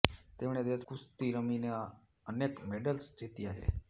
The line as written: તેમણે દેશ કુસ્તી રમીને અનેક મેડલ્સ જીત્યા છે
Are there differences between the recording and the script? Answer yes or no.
no